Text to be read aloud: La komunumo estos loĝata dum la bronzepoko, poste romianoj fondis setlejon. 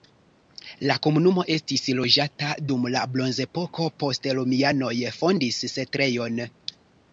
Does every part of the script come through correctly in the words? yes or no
no